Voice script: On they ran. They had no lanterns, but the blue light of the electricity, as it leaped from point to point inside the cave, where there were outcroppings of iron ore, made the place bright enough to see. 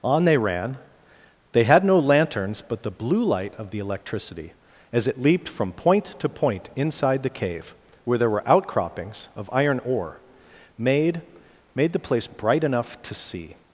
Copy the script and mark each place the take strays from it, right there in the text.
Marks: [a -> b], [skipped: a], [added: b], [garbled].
On they ran. They had no lanterns, but the blue light of the electricity, as it leaped from point to point inside the cave, where there were outcroppings of iron ore, made [added: made] the place bright enough to see.